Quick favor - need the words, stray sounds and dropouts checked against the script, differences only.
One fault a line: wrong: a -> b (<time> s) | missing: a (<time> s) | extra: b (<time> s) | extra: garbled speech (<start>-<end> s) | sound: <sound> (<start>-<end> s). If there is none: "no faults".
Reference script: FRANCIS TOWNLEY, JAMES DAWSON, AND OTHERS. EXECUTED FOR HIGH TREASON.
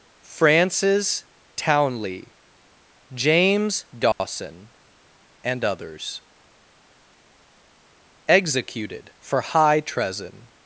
sound: dropout (4.1-4.2 s)